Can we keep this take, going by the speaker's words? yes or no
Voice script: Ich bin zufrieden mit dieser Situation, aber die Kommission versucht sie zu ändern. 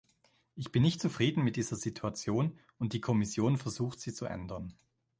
no